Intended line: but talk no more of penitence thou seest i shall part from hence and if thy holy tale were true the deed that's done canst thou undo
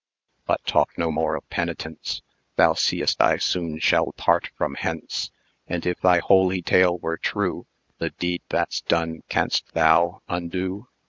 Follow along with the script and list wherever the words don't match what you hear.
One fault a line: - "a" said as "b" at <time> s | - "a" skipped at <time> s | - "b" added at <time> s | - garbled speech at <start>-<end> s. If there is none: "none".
- "soon" added at 3.4 s